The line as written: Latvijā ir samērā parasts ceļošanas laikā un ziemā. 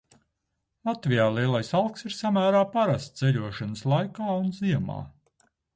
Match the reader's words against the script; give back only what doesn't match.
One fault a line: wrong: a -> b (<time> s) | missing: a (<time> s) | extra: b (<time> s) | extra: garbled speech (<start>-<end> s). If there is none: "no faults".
extra: lielais alks (1.4 s)